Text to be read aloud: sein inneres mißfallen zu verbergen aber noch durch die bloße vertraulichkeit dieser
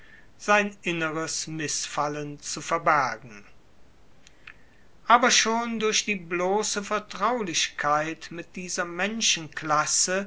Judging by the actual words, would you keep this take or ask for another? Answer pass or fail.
fail